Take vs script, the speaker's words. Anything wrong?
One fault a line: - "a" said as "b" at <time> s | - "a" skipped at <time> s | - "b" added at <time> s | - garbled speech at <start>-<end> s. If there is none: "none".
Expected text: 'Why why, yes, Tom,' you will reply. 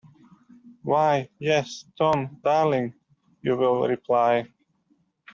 - "why" skipped at 1.3 s
- "darling" added at 2.4 s